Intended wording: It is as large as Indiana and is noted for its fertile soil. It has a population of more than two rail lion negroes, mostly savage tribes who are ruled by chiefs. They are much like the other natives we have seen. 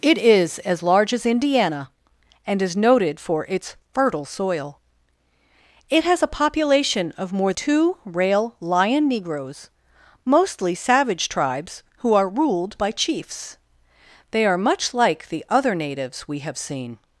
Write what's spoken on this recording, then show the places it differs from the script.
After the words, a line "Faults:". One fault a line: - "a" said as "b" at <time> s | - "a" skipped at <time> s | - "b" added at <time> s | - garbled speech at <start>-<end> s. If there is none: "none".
It is as large as Indiana and is noted for its fertile soil. It has a population of more two rail lion negroes, mostly savage tribes who are ruled by chiefs. They are much like the other natives we have seen.
Faults:
- "than" skipped at 7.5 s